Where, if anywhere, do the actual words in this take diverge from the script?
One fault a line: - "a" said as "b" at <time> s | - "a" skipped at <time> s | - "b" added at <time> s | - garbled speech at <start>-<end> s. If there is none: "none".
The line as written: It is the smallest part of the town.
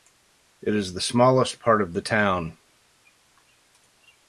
none